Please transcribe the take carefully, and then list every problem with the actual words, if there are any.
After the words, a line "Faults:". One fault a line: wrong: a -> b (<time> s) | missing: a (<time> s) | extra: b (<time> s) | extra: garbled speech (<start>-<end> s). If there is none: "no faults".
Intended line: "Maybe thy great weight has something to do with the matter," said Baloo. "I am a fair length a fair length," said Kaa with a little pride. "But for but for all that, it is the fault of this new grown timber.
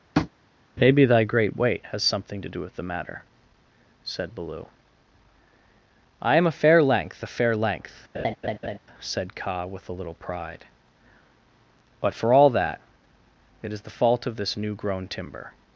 "Maybe thy great weight has something to do with the matter," said Baloo. "I am a fair length a fair length," said Kaa with a little pride. "But for all that, it is the fault of this new grown timber.
Faults:
missing: but for (12.3 s)